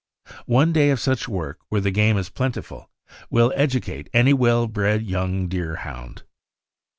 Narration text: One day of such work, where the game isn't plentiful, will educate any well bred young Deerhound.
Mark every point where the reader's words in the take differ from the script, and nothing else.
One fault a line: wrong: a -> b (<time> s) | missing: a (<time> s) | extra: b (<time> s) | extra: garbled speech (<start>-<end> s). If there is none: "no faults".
wrong: isn't -> is (2.2 s)